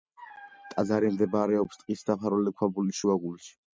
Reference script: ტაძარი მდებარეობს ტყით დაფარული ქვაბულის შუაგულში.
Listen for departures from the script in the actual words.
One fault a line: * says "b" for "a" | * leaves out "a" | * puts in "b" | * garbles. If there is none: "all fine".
all fine